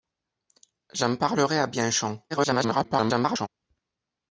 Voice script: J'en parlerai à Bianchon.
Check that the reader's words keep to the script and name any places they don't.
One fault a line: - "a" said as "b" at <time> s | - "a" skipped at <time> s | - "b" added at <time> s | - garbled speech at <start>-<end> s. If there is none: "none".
- garbled speech at 2.3-3.5 s